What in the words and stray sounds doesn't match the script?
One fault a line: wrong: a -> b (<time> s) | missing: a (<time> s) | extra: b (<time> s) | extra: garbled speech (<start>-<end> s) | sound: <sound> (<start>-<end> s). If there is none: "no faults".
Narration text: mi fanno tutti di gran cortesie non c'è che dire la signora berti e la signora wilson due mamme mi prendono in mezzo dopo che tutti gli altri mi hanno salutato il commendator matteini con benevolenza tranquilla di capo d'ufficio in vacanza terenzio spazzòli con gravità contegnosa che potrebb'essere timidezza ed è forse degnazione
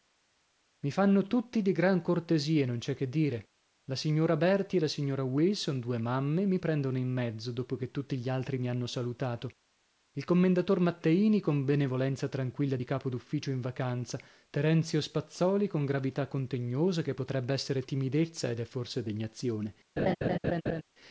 sound: laugh (20.0-20.8 s)